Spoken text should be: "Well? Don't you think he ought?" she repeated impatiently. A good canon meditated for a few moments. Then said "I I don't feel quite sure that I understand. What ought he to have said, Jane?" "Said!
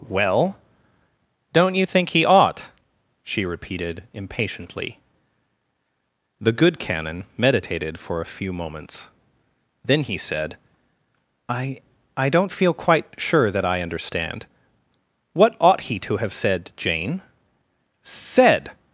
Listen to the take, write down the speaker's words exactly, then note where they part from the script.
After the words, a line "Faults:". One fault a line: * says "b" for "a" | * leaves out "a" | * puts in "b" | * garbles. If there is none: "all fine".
"Well? Don't you think he ought?" she repeated impatiently. The good canon meditated for a few moments. Then he said "I I don't feel quite sure that I understand. What ought he to have said, Jane?" "Said!
Faults:
* says "The" for "A"
* puts in "he"